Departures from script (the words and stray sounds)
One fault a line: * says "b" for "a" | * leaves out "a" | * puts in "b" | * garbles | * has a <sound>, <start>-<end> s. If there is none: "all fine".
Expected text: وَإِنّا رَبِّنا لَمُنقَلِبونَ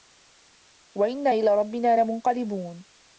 * puts in "إِلى"